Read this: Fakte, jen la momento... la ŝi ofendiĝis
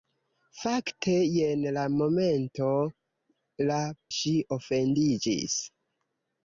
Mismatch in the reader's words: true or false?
false